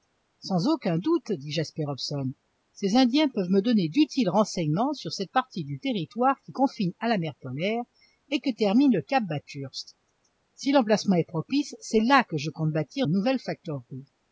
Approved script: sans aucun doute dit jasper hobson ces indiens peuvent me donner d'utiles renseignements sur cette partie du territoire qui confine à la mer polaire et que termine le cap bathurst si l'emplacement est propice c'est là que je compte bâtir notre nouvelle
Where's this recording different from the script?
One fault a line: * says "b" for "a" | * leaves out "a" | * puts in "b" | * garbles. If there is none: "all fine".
* leaves out "notre"